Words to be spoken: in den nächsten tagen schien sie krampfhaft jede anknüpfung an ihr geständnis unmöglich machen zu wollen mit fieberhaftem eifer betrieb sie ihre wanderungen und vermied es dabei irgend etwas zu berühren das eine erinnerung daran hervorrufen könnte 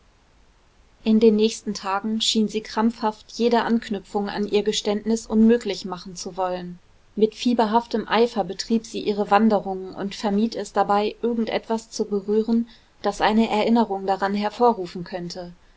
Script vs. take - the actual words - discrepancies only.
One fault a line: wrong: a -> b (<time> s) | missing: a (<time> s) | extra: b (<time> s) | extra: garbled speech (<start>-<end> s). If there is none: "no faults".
no faults